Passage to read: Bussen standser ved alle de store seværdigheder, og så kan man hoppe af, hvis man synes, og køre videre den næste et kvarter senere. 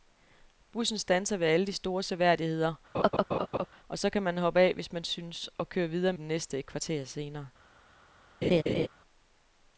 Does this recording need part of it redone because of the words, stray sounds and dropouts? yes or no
yes